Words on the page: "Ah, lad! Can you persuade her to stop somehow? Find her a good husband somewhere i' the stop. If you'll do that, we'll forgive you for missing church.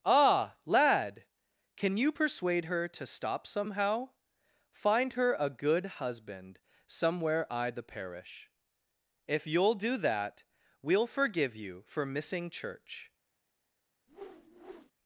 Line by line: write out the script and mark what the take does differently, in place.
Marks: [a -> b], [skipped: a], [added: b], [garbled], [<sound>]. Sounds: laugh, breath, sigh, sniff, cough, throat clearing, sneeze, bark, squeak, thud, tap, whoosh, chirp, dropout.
"Ah, lad! Can you persuade her to stop somehow? Find her a good husband somewhere i' the [stop. -> parish] If you'll do that, we'll forgive you for missing church. [whoosh]